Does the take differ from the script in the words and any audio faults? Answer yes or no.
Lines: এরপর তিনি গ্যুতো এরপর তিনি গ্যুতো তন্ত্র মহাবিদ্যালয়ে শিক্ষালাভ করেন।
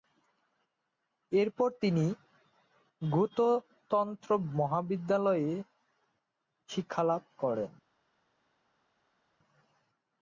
yes